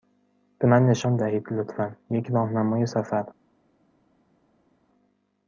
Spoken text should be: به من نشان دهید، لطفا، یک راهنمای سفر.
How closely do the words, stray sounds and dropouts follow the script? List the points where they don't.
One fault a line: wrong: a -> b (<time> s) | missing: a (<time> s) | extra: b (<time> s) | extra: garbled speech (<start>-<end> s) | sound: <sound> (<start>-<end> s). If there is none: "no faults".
no faults